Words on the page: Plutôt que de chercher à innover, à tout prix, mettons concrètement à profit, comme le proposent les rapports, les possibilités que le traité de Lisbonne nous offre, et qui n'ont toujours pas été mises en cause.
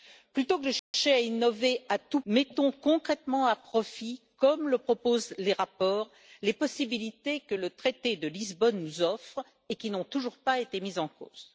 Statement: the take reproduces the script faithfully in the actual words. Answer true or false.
false